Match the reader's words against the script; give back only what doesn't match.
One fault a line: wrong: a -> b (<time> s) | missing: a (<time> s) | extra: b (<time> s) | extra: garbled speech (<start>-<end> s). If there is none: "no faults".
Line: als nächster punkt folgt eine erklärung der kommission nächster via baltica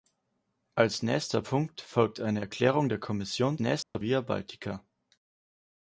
no faults